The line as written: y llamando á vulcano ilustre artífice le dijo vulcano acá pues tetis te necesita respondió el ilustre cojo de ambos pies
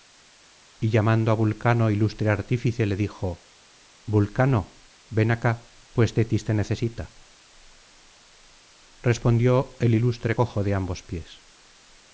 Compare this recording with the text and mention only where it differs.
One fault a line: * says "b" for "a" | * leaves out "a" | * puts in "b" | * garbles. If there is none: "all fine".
* puts in "ven"